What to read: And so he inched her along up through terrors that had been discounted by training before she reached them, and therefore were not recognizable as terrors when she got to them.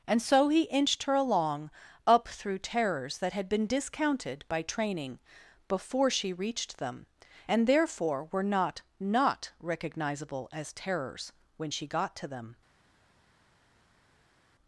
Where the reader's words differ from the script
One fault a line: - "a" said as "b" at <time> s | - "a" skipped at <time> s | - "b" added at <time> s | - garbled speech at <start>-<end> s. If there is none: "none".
- "not" added at 9.0 s